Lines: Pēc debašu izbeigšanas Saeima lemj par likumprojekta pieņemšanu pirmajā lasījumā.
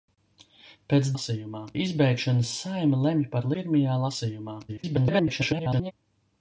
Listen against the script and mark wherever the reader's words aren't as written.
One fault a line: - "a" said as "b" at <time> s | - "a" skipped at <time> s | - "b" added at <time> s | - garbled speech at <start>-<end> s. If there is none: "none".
- "debašu" said as "lasījumā" at 1.1 s
- "likumprojekta pieņemšanu" skipped at 3.5 s
- garbled speech at 4.7-5.9 s